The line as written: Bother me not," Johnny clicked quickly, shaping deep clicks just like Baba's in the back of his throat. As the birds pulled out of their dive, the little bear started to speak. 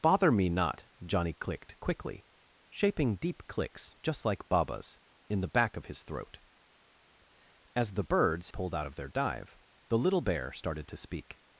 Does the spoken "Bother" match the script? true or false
true